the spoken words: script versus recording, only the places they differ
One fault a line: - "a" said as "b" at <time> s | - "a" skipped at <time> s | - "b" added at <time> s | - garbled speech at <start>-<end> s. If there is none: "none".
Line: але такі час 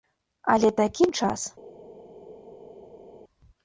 none